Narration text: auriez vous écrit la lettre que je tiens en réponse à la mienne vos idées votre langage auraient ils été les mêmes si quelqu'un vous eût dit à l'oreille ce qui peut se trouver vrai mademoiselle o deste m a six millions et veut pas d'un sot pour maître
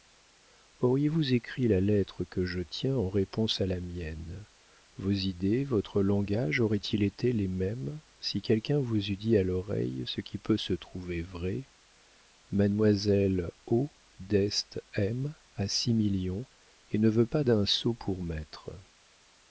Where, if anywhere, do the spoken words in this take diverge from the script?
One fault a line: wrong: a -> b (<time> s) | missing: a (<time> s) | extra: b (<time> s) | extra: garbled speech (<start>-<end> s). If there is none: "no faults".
extra: ne (17.0 s)